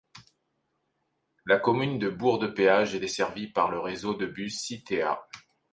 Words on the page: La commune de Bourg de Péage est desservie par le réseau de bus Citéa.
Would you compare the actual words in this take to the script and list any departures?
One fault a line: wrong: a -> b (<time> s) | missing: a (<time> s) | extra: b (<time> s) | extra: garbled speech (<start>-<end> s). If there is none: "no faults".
no faults